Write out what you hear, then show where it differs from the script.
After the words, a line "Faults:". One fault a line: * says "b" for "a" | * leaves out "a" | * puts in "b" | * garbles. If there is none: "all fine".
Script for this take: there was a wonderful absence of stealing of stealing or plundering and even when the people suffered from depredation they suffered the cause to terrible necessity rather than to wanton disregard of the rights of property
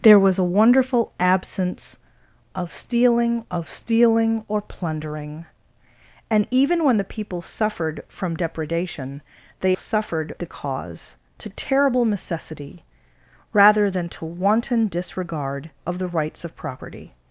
there was a wonderful absence of stealing of stealing or plundering and even when the people suffered from depredation they suffered the cause to terrible necessity rather than to wanton disregard of the rights of property
Faults:
all fine